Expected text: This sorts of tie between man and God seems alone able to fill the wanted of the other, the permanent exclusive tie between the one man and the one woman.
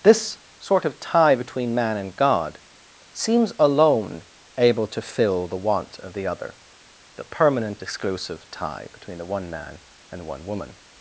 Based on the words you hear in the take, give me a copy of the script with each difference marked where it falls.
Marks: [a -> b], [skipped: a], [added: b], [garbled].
This [sorts -> sort] of tie between man and God seems alone able to fill the [wanted -> want] of the other, the permanent exclusive tie between the one man and the one woman.